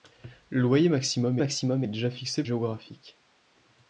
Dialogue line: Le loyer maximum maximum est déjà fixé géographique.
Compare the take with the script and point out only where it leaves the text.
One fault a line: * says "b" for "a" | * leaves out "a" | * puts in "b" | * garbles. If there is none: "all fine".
all fine